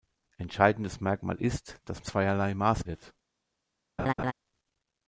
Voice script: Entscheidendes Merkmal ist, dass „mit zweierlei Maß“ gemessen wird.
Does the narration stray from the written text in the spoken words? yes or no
yes